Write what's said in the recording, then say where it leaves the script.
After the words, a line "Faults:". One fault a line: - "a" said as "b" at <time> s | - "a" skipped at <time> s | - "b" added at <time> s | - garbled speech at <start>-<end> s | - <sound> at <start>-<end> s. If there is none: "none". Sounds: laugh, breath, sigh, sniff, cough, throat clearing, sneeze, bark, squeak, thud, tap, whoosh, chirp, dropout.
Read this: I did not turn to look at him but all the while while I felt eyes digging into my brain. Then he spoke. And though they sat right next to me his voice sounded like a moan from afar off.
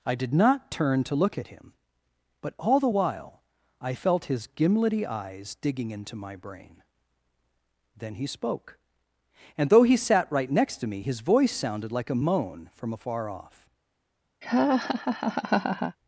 I did not turn to look at him but all the while I felt his gimlety eyes digging into my brain. Then he spoke. And though he sat right next to me his voice sounded like a moan from afar off.
Faults:
- "while" skipped at 3.4 s
- "his gimlety" added at 4.2 s
- "they" said as "he" at 9.8 s
- laugh at 14.4-16.0 s